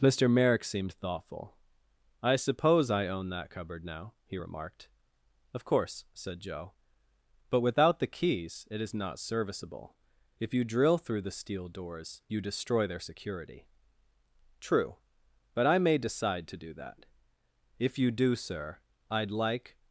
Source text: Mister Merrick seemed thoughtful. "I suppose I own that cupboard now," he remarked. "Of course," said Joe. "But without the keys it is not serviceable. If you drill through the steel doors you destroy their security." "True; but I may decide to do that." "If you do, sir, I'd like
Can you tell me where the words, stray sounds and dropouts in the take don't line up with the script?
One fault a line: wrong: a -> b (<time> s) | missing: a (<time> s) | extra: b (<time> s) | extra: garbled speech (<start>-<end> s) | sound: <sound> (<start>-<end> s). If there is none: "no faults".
no faults